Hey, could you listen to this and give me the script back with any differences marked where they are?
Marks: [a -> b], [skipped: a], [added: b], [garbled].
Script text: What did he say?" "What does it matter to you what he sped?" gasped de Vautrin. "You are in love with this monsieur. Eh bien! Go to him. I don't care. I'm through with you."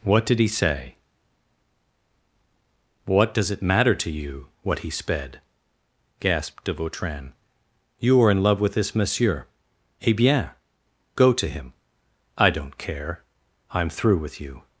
What did he say?" "What does it matter to you what he sped?" gasped de Vautrin. "You are in love with this monsieur. Eh bien! Go to him. I don't care. I'm through with you."